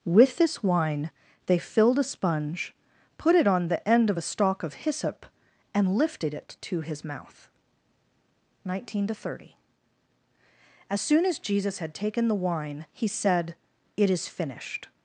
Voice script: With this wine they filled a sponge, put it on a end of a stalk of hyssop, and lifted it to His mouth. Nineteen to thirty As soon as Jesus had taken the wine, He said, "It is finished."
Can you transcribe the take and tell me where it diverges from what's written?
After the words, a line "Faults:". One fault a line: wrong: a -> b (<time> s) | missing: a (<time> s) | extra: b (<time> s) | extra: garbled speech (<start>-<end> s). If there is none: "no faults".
With this wine they filled a sponge, put it on the end of a stalk of hyssop, and lifted it to His mouth. Nineteen to thirty As soon as Jesus had taken the wine, He said, "It is finished."
Faults:
wrong: a -> the (3.7 s)